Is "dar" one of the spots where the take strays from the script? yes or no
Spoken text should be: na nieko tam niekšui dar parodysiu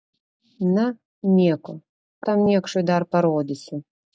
no